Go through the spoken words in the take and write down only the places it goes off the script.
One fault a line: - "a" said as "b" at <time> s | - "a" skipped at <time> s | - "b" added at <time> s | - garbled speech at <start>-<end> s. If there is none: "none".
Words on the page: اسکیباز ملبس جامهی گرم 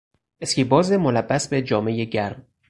- "به" added at 1.5 s